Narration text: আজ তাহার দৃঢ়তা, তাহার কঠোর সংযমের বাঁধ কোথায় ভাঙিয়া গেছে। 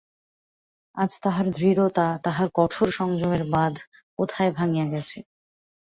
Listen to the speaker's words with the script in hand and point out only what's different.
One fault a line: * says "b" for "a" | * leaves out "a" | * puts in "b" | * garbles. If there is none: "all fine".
all fine